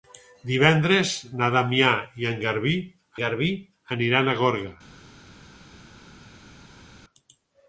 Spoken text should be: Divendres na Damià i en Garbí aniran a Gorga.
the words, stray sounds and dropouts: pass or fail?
fail